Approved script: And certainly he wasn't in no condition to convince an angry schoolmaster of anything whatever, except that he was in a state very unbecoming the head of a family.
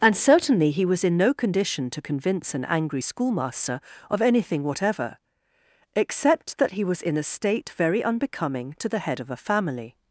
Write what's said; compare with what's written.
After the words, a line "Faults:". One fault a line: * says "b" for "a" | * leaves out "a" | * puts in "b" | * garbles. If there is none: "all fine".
And certainly he was in no condition to convince an angry schoolmaster of anything whatever, except that he was in a state very unbecoming to the head of a family.
Faults:
* says "was" for "wasn't"
* puts in "to"